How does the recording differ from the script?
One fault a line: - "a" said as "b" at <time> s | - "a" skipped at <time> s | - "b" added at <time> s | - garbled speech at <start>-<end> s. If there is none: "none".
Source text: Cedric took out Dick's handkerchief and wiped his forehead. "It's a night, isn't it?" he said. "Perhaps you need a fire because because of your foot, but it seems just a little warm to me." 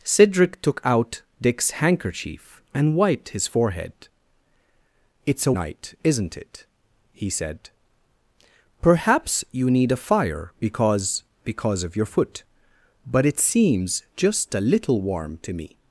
none